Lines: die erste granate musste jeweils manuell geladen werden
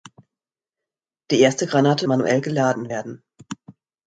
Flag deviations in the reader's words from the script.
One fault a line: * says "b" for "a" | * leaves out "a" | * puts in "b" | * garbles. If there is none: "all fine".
* leaves out "musste jeweils"